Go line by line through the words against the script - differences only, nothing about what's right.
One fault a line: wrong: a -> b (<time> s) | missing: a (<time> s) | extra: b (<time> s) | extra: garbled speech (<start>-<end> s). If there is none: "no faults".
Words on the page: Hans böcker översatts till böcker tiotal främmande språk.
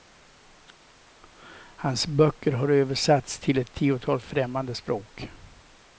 extra: har (2.5 s)
wrong: böcker -> ett (3.6 s)